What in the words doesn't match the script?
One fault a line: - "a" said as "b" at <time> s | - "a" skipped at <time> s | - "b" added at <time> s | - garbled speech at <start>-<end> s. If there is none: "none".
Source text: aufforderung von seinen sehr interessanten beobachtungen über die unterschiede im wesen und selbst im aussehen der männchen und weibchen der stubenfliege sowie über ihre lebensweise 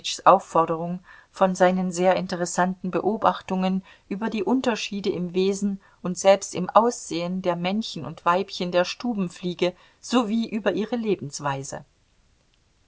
none